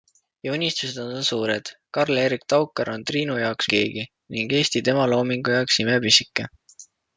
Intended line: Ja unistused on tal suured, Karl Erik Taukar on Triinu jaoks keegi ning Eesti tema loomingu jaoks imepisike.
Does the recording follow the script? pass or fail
pass